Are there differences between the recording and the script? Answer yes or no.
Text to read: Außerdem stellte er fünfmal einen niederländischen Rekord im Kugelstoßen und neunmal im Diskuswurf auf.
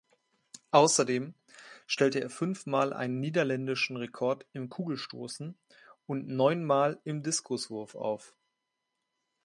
no